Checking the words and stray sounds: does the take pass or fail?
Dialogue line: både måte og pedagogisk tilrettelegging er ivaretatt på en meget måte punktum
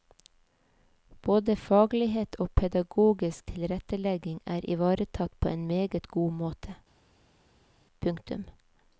fail